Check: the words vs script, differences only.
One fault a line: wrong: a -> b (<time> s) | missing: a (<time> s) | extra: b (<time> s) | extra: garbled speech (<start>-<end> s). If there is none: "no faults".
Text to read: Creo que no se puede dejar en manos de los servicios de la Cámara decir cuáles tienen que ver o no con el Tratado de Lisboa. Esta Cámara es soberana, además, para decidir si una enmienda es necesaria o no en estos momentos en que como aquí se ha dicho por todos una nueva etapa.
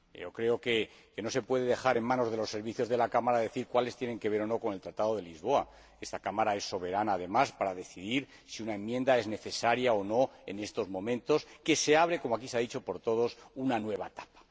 extra: se abre (11.8 s)